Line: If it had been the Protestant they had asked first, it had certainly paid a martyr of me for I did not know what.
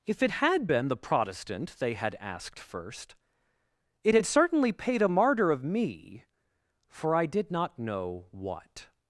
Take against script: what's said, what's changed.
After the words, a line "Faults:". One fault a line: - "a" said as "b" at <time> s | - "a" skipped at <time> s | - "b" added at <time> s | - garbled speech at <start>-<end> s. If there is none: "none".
If it had been the Protestant they had asked first, it had certainly paid a martyr of me for I did not know what.
Faults:
none